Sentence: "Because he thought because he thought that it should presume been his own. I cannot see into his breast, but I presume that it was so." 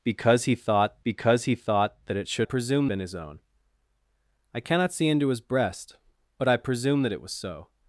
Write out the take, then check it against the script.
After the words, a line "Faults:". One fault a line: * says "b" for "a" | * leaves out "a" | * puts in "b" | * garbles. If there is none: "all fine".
"Because he thought because he thought that it should presume been his own. I cannot see into his breast, but I presume that it was so."
Faults:
all fine